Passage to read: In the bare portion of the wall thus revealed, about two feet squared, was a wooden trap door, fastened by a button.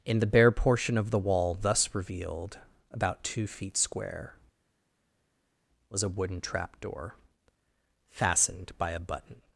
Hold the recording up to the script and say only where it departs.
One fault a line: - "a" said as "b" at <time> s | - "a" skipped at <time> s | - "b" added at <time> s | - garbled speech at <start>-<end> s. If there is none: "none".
- "squared" said as "square" at 3.8 s